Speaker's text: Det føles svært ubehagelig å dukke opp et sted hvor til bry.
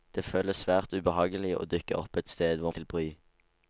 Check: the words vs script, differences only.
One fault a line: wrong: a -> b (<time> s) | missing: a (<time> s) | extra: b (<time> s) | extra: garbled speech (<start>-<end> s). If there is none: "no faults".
no faults